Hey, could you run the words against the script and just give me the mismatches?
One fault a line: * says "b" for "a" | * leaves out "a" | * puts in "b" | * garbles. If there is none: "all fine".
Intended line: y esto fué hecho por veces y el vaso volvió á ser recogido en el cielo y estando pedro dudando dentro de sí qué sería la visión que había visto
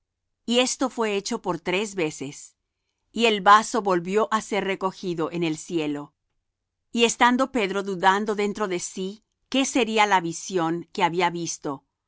* puts in "tres"